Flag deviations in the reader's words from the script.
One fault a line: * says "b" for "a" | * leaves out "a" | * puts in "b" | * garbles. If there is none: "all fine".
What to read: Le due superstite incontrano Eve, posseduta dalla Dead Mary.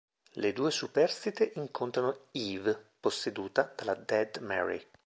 all fine